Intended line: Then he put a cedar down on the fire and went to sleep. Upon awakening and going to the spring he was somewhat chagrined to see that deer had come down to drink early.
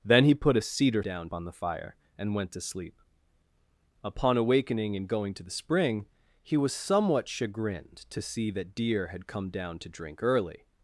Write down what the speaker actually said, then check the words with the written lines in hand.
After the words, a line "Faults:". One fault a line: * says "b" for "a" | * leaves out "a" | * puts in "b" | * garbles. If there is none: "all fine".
Then he put a cedar down on the fire and went to sleep. Upon awakening and going to the spring he was somewhat chagrined to see that deer had come down to drink early.
Faults:
all fine